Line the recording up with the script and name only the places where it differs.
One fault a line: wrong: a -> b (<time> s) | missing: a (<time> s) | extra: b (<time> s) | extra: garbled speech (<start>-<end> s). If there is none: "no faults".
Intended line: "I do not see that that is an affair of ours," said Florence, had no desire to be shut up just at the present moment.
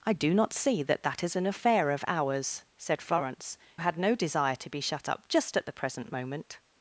no faults